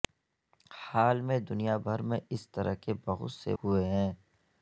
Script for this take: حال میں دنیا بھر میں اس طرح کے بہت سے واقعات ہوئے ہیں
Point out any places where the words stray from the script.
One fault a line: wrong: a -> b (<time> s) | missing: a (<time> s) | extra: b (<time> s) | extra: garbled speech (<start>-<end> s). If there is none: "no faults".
missing: واقعات (3.5 s)